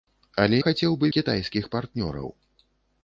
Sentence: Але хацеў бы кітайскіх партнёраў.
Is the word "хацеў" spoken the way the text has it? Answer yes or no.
yes